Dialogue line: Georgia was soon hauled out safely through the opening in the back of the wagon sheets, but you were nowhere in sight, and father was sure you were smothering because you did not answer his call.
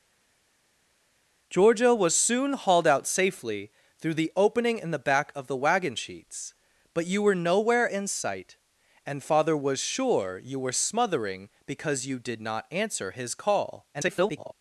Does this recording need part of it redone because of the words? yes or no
yes